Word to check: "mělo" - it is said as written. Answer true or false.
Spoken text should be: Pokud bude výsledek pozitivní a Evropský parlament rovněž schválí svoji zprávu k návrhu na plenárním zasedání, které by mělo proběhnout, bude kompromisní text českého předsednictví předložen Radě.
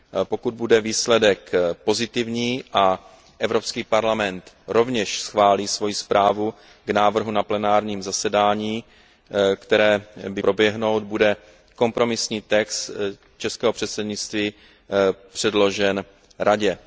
false